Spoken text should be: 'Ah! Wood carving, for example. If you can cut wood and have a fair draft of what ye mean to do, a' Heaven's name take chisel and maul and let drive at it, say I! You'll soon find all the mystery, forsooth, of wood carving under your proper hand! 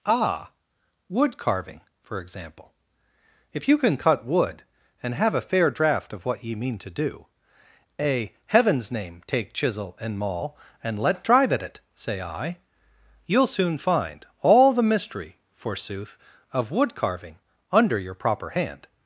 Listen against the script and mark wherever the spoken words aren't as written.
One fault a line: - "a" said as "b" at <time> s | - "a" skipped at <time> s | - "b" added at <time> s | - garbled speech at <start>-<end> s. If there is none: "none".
none